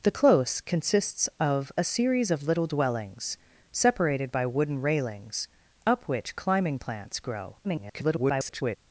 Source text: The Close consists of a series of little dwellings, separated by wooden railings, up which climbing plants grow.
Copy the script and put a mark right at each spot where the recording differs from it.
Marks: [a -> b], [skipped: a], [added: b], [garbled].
The Close consists of a series of little dwellings, separated by wooden railings, up which climbing plants grow. [garbled]